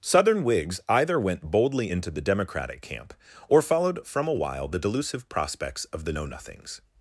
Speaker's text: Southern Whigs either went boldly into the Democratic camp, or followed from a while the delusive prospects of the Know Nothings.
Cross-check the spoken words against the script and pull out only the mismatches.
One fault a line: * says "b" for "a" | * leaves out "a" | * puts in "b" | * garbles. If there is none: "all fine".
all fine